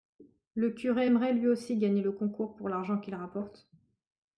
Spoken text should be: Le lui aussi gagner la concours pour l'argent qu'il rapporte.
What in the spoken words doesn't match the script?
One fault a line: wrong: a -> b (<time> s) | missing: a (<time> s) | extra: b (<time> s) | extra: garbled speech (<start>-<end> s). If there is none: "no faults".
extra: curé aimerait (0.7 s)
wrong: la -> le (2.0 s)